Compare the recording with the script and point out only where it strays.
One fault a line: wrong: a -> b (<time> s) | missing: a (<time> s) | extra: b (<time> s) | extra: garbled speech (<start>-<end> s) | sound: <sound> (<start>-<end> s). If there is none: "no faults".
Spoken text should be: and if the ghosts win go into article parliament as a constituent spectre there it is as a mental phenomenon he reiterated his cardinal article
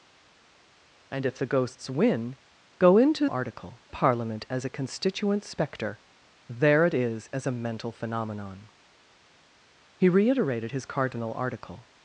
no faults